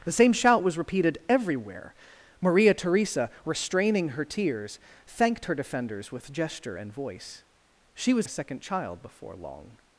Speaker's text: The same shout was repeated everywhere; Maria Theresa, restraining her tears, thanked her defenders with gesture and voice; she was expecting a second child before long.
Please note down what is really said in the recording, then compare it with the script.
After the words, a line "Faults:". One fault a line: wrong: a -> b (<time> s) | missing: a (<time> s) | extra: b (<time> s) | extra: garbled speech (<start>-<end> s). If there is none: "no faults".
The same shout was repeated everywhere; Maria Theresa, restraining her tears, thanked her defenders with gesture and voice; she was a second child before long.
Faults:
missing: expecting (8.3 s)